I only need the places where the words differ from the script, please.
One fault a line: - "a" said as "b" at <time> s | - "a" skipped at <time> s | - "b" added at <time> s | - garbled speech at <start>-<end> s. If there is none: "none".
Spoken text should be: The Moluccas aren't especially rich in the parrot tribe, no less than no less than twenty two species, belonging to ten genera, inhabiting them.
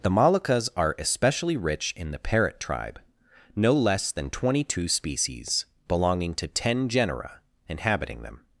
- "aren't" said as "are" at 0.8 s
- "no less than" skipped at 4.3 s